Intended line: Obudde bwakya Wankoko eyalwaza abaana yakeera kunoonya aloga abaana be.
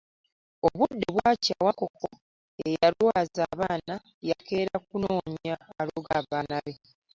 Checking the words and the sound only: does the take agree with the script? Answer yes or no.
yes